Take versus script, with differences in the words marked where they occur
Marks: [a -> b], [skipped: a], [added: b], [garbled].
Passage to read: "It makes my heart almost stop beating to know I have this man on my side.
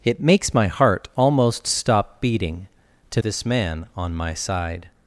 "It makes my heart almost stop beating to [skipped: know I have] this man on my side.